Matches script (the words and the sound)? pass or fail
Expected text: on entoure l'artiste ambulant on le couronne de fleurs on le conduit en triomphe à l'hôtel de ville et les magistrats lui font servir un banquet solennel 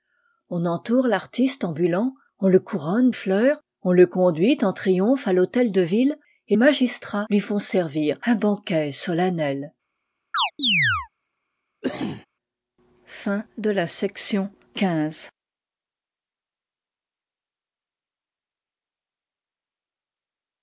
fail